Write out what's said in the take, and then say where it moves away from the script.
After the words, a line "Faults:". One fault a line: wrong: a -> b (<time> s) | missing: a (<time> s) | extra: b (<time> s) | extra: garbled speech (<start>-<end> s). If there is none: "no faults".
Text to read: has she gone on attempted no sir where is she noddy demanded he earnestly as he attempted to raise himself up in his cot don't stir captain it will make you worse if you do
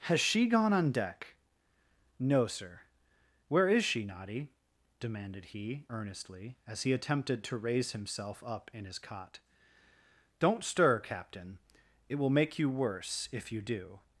has she gone on deck no sir where is she noddy demanded he earnestly as he attempted to raise himself up in his cot don't stir captain it will make you worse if you do
Faults:
wrong: attempted -> deck (0.9 s)